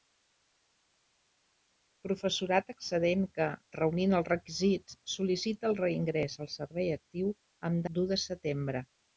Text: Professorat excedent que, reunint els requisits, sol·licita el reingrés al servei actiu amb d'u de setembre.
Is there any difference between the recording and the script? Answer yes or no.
no